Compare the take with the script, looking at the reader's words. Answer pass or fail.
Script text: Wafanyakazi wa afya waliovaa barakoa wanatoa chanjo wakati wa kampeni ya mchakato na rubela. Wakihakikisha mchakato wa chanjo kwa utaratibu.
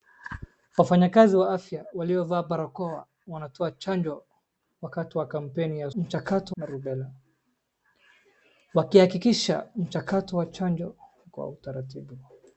pass